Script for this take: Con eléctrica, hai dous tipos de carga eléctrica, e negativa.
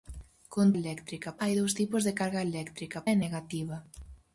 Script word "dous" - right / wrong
right